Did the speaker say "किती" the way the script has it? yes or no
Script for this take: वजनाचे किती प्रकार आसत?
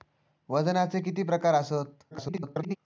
yes